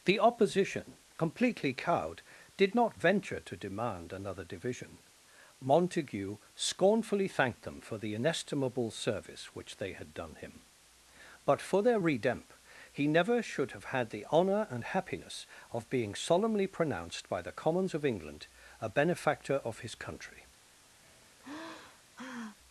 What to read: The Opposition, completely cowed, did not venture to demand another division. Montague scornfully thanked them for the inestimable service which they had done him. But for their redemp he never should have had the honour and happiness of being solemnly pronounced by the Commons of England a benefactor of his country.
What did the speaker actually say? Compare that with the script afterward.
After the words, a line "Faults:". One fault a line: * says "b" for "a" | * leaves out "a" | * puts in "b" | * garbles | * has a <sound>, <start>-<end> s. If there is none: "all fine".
The Opposition, completely cowed, did not venture to demand another division. Montague scornfully thanked them for the inestimable service which they had done him. But for their redemp he never should have had the honour and happiness of being solemnly pronounced by the Commons of England a benefactor of his country.
Faults:
* has a sigh, 21.0-22.6 s